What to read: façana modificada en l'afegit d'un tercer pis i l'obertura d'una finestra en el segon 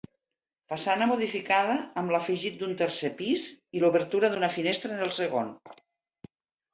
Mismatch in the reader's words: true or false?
true